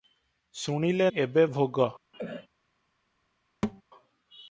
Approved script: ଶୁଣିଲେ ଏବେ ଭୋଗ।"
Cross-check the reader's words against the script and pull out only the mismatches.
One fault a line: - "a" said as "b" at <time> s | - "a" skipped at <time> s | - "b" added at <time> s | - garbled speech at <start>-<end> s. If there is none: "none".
none